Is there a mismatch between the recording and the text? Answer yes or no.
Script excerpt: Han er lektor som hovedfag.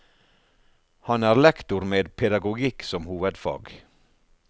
yes